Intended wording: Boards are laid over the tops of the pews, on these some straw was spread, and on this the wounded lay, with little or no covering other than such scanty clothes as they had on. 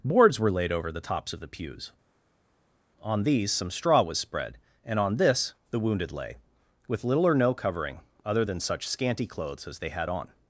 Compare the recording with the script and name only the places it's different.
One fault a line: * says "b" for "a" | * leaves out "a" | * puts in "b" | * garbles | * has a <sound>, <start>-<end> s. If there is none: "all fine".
* says "were" for "are"